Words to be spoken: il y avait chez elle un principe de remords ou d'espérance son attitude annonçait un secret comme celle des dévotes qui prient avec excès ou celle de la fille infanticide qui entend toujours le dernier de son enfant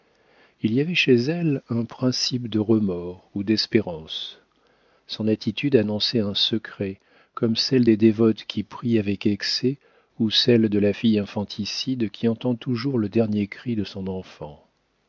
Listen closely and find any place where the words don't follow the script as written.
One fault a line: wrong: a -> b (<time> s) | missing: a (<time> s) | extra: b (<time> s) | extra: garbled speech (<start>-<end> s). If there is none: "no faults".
extra: cri (13.5 s)